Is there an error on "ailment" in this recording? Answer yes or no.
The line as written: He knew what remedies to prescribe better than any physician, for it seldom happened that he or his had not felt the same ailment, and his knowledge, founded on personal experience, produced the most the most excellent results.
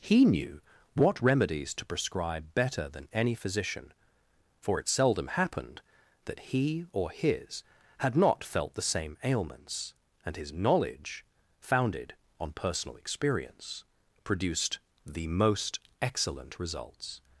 yes